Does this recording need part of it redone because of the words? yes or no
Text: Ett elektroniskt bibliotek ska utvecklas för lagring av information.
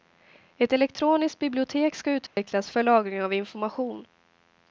no